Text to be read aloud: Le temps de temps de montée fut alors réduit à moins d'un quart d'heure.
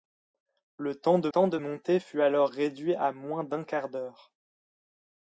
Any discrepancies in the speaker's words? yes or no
no